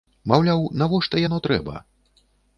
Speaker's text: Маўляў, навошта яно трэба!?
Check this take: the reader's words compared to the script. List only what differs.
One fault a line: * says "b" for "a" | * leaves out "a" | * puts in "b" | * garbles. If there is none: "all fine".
all fine